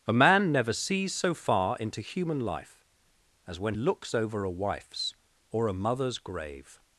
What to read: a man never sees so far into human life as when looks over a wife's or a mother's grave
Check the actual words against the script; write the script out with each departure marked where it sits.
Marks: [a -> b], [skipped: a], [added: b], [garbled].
a man never sees so far into human life as when looks over a wife's or a mother's grave